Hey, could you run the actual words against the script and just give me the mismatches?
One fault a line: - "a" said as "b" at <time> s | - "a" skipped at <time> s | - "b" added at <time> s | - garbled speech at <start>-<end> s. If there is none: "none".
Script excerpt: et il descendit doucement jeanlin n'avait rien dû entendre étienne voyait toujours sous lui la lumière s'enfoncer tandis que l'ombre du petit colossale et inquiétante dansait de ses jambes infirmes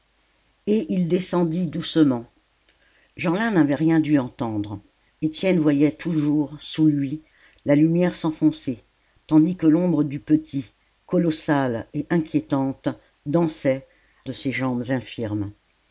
none